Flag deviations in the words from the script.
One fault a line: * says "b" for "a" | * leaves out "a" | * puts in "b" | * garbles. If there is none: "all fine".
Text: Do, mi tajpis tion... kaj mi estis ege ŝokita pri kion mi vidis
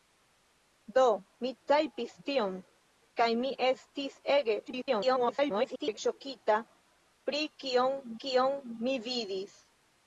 * garbles
* puts in "kion"